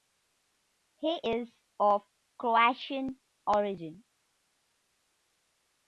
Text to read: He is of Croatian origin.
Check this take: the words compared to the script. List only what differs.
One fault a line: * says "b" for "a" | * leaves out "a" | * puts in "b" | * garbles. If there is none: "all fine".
all fine